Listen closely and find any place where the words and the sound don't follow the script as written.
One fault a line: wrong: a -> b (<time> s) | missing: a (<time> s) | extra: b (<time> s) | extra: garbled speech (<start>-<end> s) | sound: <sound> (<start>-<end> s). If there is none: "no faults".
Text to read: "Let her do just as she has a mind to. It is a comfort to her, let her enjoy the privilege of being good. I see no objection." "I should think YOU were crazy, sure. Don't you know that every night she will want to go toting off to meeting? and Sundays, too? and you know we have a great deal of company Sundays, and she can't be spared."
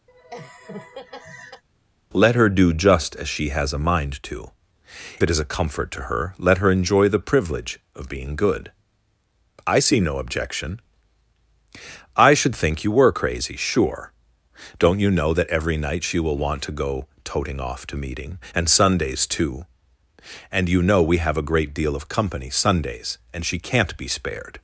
sound: laugh (0.1-1.6 s)